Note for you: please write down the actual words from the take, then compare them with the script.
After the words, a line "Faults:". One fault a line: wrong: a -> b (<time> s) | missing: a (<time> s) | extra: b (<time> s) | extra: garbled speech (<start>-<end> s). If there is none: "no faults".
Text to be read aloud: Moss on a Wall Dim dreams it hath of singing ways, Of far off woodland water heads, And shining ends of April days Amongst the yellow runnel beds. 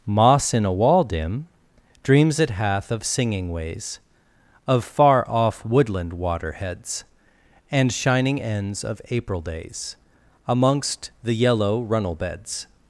Moss in a Wall Dim dreams it hath of singing ways, Of far off woodland water heads, And shining ends of April days Amongst the yellow runnel beds.
Faults:
wrong: on -> in (0.5 s)